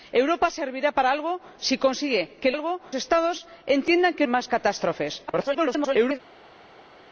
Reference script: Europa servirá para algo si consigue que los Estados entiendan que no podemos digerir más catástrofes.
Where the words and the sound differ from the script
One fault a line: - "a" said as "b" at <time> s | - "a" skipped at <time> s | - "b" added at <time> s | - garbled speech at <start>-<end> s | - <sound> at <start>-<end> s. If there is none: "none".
- "los" said as "algo" at 2.5 s
- "no podemos digerir" skipped at 4.3 s
- garbled speech at 5.3-6.2 s